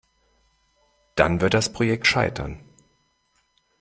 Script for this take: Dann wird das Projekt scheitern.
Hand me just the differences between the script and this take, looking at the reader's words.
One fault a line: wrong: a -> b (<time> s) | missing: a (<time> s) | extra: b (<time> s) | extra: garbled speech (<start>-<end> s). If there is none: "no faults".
no faults